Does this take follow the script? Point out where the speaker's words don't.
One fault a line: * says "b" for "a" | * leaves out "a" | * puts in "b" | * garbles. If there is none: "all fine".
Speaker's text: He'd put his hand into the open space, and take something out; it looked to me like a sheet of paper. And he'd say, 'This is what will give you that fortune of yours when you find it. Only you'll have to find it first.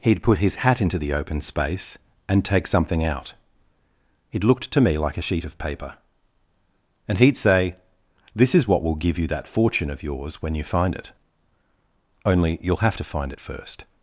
* says "hat" for "hand"